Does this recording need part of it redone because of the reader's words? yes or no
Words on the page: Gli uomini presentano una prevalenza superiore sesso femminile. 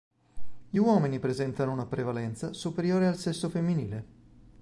yes